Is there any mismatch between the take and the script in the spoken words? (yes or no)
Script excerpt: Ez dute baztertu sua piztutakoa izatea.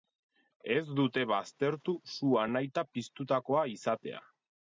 yes